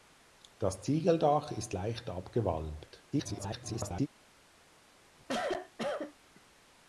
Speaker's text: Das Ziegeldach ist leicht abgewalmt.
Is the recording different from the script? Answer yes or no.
yes